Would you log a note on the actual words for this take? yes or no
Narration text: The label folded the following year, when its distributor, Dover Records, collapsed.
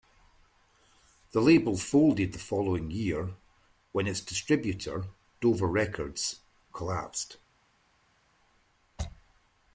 no